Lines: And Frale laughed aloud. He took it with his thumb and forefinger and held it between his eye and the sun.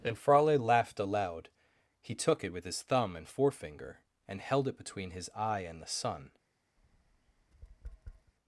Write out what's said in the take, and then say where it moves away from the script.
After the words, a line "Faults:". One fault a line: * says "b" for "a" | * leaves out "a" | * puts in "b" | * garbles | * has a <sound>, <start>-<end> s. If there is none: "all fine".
And Frale laughed aloud. He took it with his thumb and forefinger and held it between his eye and the sun.
Faults:
* has a tap, 6.8-8.3 s